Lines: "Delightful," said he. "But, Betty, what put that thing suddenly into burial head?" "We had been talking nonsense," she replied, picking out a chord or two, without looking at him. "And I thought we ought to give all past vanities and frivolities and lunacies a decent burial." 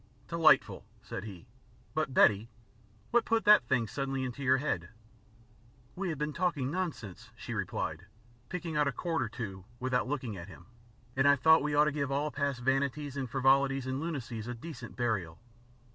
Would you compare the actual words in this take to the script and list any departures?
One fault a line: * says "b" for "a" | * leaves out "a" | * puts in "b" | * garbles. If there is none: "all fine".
* says "your" for "burial"